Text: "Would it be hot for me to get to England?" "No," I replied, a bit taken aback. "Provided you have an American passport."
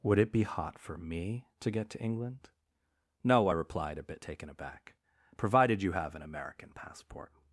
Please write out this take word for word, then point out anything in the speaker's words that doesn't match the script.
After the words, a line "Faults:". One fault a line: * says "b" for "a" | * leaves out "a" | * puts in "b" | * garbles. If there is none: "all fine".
"Would it be hot for me to get to England?" "No," I replied, a bit taken aback. "Provided you have an American passport."
Faults:
all fine